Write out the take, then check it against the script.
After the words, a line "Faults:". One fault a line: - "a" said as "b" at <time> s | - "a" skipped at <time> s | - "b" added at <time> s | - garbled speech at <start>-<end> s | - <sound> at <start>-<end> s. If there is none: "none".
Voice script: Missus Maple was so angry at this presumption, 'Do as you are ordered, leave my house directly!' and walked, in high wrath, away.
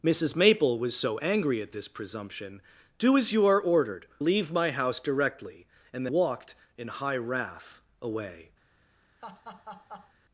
Missus Maple was so angry at this presumption, 'Do as you are ordered, leave my house directly!' and walked, in high wrath, away.
Faults:
- laugh at 9.2-10.1 s